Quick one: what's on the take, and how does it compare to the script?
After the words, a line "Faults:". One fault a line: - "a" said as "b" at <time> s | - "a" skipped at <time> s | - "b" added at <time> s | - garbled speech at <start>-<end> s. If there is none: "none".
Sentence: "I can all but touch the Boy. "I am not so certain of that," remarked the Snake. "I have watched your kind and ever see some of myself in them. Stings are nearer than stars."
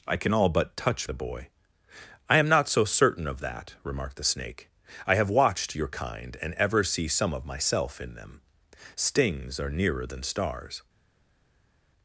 "I can all but touch the Boy. "I am not so certain of that," remarked the Snake. "I have watched your kind and ever see some of myself in them. Stings are nearer than stars."
Faults:
none